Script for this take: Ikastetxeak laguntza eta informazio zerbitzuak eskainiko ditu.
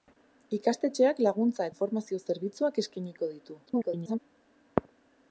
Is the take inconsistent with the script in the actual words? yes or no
yes